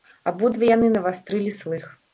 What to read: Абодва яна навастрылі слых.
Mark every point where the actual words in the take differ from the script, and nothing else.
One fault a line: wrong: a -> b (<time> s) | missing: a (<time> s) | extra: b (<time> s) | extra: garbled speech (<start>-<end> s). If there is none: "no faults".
wrong: яна -> яны (0.7 s)